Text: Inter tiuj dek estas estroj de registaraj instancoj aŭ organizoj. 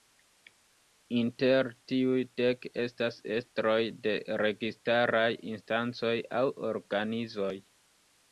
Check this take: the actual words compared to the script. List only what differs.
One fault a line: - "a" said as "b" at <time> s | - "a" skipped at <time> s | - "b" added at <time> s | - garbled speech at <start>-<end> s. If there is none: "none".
none